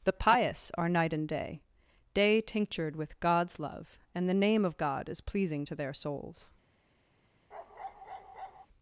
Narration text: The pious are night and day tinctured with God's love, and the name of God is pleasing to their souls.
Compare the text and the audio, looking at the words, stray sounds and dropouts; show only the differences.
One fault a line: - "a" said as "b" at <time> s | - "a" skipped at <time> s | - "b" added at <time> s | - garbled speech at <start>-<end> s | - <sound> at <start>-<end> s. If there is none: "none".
- "day" added at 2.1 s
- bark at 7.5-8.7 s